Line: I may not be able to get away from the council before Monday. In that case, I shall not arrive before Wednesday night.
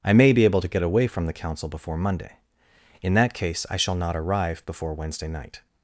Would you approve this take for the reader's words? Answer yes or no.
no